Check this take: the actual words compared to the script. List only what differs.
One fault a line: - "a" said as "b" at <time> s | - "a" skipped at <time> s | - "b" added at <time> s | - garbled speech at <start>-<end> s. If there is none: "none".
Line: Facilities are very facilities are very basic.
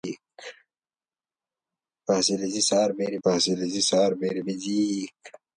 none